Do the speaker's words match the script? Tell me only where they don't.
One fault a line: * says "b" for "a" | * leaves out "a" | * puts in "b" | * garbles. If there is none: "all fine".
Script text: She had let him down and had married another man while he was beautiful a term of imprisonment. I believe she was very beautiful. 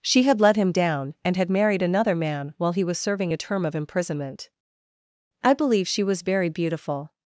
* says "serving" for "beautiful"